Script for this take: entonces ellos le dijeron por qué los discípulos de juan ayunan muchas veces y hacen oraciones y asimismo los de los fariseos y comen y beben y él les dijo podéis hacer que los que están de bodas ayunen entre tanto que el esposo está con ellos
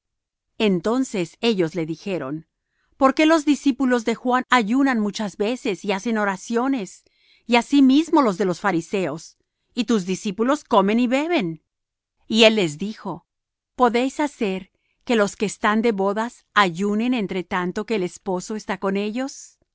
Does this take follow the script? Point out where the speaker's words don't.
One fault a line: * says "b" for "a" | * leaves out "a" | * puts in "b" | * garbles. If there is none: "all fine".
* puts in "tus discípulos"